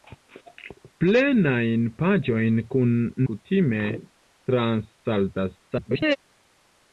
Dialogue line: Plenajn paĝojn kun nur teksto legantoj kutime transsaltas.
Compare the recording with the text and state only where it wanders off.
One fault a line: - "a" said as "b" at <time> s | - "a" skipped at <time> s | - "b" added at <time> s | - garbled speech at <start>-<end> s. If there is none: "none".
- "nur teksto legantoj" skipped at 3.0 s
- garbled speech at 5.7-6.2 s